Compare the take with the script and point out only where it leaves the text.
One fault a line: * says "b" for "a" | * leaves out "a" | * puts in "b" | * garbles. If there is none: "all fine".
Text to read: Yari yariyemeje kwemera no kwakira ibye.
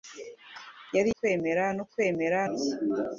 * leaves out "yariyemeje"
* says "kwemera" for "kwakira"